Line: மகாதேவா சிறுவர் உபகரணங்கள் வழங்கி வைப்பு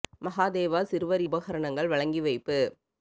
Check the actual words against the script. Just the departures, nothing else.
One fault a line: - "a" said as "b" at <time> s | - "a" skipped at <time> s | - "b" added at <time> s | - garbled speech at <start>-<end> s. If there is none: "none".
none